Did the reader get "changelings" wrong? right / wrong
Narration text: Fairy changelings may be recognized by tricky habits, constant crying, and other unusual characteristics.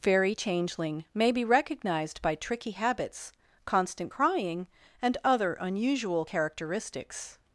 wrong